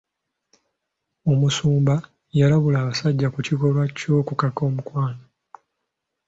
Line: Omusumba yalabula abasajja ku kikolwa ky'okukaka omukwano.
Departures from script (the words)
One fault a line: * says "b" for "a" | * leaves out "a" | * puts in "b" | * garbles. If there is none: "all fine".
all fine